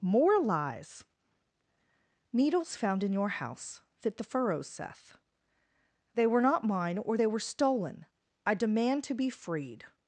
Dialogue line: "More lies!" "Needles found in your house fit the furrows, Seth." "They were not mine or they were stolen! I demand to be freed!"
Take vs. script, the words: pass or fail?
pass